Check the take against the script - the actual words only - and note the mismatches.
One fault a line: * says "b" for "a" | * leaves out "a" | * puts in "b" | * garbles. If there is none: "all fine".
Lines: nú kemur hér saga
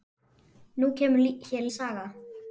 all fine